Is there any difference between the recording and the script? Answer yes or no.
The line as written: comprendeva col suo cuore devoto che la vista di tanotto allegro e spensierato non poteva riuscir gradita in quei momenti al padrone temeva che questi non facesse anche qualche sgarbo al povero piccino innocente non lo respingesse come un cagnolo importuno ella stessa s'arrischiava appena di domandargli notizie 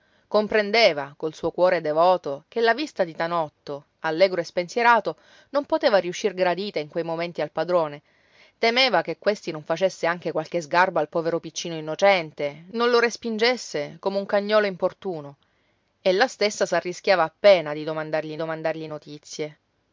yes